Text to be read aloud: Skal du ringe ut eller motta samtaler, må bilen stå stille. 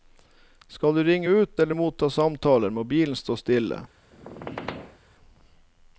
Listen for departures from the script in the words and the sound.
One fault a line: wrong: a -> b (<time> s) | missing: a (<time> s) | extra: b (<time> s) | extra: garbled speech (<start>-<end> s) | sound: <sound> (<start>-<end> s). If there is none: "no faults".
sound: squeak (4.1-5.0 s)